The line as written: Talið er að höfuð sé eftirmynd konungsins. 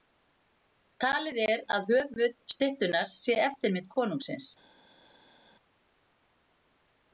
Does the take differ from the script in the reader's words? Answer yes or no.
yes